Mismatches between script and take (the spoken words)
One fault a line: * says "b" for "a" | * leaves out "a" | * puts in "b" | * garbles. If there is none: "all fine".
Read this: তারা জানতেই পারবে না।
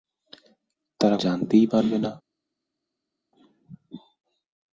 all fine